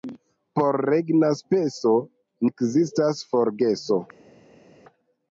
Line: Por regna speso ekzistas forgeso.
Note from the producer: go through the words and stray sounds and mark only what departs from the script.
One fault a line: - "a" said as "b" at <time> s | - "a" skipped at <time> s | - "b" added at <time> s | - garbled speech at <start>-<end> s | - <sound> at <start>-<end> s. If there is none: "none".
none